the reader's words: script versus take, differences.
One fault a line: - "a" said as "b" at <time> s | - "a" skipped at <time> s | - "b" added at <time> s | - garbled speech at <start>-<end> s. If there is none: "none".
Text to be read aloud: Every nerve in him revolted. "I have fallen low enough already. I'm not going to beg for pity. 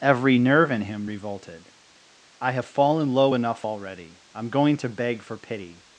- "not" skipped at 4.5 s